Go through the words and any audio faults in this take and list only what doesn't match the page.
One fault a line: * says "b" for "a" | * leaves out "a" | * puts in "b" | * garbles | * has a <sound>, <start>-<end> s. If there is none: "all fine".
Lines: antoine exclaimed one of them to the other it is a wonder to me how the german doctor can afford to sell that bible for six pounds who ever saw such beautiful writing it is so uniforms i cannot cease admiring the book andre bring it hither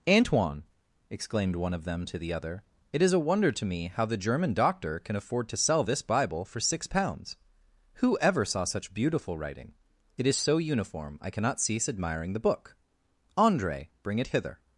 * says "this" for "that"
* says "uniform" for "uniforms"